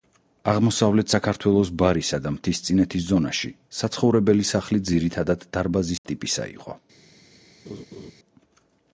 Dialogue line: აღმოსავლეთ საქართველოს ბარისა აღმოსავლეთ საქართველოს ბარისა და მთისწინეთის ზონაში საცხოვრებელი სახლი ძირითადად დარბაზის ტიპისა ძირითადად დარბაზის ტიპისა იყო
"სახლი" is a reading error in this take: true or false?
false